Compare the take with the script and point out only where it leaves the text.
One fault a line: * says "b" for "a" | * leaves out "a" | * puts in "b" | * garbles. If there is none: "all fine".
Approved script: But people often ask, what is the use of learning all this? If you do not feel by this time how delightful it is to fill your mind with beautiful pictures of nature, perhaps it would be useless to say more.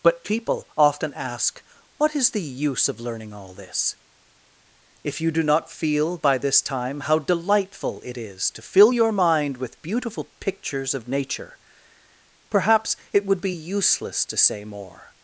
all fine